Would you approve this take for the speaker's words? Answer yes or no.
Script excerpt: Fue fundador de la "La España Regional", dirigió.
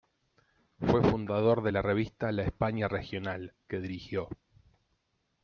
no